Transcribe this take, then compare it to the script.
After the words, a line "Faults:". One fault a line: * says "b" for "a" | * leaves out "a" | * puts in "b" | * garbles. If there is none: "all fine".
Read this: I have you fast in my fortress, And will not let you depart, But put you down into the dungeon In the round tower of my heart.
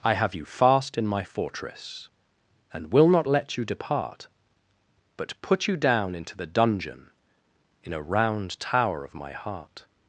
I have you fast in my fortress, And will not let you depart, But put you down into the dungeon In a round tower of my heart.
Faults:
* says "a" for "the"